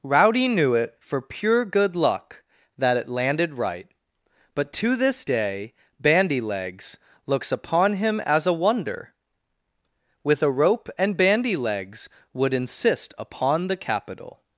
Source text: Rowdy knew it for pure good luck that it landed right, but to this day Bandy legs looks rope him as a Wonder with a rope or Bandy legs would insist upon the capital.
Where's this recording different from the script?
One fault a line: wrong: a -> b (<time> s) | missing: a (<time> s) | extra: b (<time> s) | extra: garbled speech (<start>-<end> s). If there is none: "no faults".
wrong: rope -> upon (7.5 s)
wrong: or -> and (11.0 s)